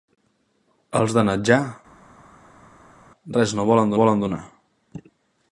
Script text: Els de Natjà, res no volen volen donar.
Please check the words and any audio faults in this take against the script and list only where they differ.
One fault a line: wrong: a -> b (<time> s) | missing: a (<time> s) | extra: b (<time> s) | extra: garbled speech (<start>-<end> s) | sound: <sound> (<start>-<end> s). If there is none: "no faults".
no faults